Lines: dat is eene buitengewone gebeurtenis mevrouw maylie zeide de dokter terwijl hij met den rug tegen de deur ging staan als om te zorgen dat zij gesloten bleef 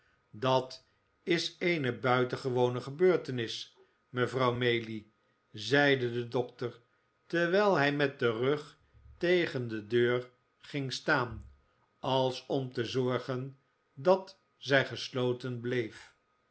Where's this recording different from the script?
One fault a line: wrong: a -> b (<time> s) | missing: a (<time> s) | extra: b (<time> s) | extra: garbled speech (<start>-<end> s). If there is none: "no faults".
no faults